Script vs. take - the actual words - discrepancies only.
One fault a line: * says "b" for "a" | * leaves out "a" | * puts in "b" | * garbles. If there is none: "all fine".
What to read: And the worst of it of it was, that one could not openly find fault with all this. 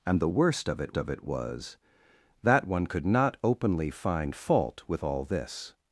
all fine